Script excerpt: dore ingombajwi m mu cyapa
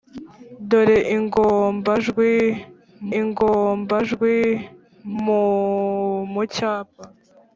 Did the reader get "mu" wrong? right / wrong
right